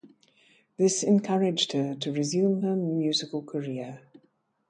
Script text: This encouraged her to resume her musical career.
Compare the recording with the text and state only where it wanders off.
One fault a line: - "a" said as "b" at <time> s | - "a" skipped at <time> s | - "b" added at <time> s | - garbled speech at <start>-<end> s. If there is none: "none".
none